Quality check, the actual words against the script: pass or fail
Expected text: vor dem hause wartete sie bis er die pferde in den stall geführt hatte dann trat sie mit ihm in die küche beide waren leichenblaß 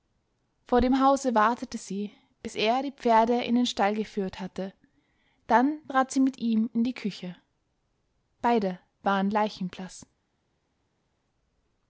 pass